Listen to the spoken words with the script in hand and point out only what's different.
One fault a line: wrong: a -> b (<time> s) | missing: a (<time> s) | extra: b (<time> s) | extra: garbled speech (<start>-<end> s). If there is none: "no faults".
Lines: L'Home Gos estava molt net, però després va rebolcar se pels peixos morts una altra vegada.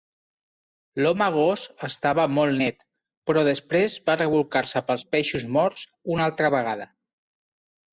no faults